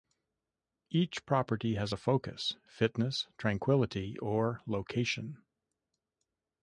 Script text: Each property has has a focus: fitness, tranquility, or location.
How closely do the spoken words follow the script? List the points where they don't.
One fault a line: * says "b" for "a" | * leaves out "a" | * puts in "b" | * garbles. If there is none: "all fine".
* leaves out "has"